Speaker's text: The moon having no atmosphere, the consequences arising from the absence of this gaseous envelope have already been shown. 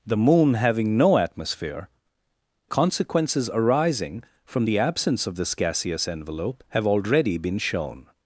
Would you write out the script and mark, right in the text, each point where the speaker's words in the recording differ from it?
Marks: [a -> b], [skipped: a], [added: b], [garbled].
The moon having no atmosphere, [skipped: the] consequences arising from the absence of this gaseous envelope have already been shown.